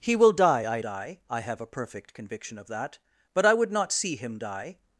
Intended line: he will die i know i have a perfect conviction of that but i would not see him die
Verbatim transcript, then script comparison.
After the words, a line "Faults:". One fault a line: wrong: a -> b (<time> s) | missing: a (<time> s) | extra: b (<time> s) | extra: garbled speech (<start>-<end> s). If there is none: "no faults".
he will die i die i have a perfect conviction of that but i would not see him die
Faults:
wrong: know -> die (0.8 s)